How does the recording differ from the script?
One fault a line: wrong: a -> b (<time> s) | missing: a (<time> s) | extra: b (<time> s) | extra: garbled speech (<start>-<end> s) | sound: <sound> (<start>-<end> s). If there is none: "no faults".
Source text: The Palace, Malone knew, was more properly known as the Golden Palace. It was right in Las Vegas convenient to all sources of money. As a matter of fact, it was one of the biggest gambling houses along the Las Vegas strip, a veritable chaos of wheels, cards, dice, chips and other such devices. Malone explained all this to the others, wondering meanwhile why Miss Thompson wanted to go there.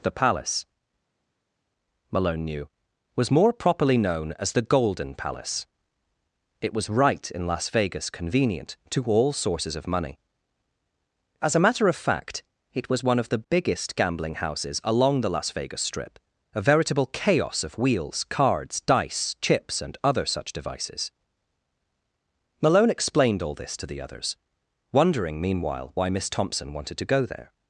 no faults